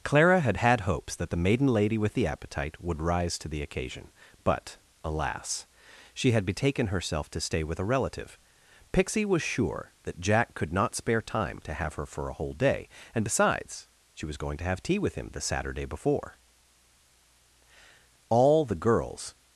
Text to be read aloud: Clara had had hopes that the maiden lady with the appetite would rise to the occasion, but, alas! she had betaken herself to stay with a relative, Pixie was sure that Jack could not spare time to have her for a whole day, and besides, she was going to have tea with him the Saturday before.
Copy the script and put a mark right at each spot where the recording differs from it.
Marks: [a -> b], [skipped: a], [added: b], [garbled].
Clara had had hopes that the maiden lady with the appetite would rise to the occasion, but, alas! she had betaken herself to stay with a relative, Pixie was sure that Jack could not spare time to have her for a whole day, and besides, she was going to have tea with him the Saturday before. [added: All the girls]